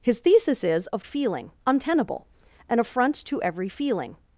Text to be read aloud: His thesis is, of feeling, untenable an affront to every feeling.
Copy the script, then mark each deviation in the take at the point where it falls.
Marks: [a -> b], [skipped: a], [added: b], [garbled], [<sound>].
His thesis is, of feeling, untenable an affront to every feeling.